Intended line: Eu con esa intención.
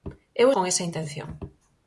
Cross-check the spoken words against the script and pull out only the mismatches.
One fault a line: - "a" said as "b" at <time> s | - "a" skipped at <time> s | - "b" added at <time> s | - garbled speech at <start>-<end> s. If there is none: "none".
none